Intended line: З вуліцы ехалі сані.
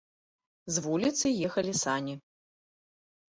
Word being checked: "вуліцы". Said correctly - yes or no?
yes